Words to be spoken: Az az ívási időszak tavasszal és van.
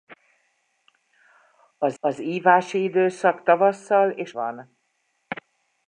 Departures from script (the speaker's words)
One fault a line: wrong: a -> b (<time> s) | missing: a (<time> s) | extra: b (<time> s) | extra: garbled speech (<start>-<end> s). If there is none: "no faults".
no faults